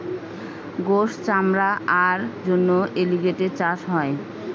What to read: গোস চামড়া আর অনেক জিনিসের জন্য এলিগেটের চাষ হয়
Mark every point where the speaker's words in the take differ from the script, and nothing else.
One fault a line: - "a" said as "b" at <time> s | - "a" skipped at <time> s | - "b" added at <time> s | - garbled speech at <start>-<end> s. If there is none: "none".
- "অনেক জিনিসের" skipped at 2.2 s